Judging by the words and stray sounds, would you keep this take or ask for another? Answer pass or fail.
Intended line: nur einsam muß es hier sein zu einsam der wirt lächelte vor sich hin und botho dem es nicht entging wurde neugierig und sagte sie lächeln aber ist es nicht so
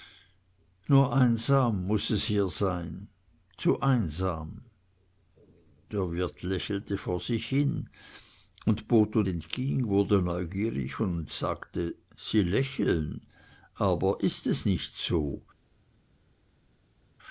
fail